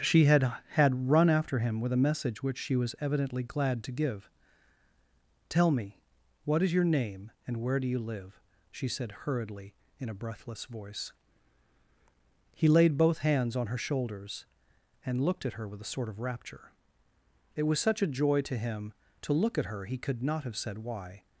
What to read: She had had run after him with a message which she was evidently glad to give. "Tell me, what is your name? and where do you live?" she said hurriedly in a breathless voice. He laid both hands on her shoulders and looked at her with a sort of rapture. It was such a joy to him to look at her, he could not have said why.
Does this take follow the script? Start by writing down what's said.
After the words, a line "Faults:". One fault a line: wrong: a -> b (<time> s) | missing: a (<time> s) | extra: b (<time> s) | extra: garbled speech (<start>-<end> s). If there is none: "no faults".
She had had run after him with a message which she was evidently glad to give. "Tell me, what is your name? and where do you live?" she said hurriedly in a breathless voice. He laid both hands on her shoulders and looked at her with a sort of rapture. It was such a joy to him to look at her, he could not have said why.
Faults:
no faults